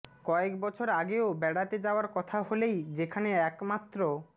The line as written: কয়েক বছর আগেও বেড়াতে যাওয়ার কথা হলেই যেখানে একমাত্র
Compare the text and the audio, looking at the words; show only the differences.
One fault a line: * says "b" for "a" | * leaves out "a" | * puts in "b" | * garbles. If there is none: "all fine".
all fine